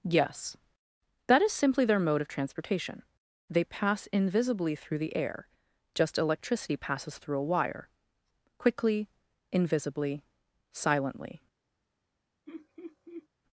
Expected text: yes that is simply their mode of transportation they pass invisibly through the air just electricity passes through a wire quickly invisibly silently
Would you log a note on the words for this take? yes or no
no